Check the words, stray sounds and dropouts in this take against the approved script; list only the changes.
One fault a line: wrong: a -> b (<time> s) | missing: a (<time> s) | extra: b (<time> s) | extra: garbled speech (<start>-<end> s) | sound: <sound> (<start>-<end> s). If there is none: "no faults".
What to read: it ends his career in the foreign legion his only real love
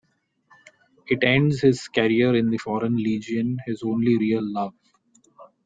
no faults